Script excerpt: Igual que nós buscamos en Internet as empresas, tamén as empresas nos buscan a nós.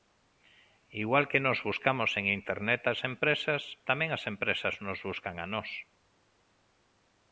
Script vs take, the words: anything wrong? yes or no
no